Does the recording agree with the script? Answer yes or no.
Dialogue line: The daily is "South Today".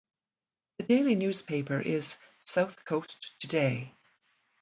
no